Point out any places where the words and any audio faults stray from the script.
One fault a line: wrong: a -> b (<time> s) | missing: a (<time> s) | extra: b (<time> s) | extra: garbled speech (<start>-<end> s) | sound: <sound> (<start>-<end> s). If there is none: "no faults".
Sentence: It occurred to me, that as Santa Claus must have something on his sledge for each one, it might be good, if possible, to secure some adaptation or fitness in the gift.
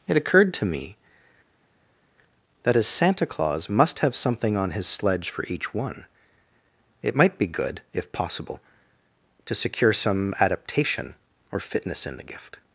no faults